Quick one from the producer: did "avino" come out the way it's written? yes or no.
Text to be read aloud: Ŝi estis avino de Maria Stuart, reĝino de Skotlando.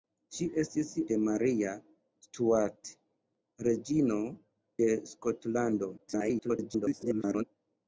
no